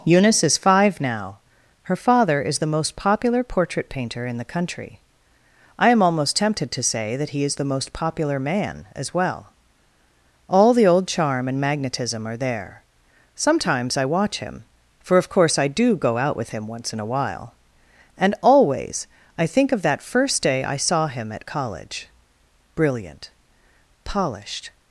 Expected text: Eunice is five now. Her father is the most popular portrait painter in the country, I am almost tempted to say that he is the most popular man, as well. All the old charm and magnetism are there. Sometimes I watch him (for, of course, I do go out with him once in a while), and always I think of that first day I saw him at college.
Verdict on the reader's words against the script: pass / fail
fail